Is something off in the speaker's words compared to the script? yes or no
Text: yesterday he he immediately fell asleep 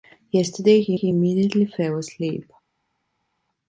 no